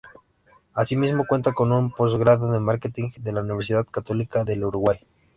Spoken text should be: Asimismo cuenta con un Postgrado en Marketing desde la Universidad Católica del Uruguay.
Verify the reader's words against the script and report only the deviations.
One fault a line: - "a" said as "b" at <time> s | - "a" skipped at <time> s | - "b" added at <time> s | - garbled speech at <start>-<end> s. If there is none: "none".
- "desde" said as "de" at 3.2 s